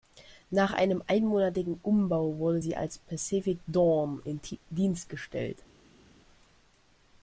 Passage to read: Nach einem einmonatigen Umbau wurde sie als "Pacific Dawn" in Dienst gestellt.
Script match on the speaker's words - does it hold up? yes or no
yes